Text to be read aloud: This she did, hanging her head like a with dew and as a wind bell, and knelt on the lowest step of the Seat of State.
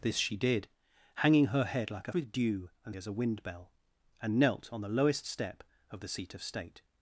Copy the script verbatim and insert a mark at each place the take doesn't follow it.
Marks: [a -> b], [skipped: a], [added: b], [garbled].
This she did, hanging her head like a with dew and as a wind bell, and knelt on the lowest step of the Seat of State.